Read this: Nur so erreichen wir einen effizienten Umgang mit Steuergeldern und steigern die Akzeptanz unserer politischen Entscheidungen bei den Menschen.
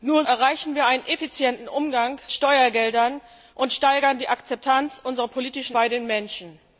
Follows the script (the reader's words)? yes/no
no